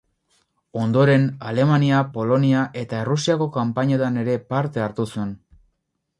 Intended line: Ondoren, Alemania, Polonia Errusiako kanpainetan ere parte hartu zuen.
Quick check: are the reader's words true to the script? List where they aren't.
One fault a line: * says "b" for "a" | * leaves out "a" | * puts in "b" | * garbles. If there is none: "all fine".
* puts in "eta"